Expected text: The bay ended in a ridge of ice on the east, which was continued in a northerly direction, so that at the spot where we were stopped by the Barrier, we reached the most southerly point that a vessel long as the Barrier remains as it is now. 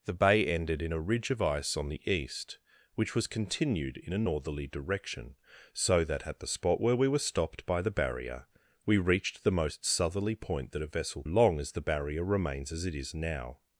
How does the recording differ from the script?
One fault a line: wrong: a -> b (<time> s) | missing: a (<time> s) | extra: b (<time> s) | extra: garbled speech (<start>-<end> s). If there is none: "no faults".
no faults